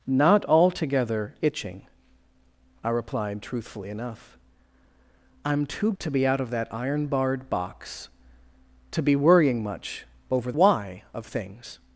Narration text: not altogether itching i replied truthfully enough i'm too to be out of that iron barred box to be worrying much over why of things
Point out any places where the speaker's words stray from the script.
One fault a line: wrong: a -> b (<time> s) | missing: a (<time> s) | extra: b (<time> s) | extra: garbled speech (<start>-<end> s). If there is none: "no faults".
no faults